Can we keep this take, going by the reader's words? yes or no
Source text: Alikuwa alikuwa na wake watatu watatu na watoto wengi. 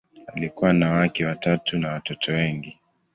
no